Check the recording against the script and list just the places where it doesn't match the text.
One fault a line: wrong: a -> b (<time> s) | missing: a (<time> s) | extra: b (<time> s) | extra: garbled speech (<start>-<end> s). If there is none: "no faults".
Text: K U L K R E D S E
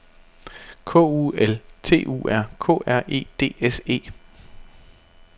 extra: T U R (1.8 s)